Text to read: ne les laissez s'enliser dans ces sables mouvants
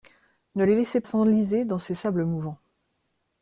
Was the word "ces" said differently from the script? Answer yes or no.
no